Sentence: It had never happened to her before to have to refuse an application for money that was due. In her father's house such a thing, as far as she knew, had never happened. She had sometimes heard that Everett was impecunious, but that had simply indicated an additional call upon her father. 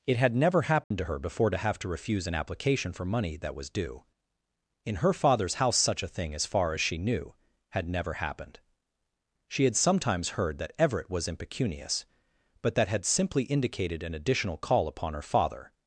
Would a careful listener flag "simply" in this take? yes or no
no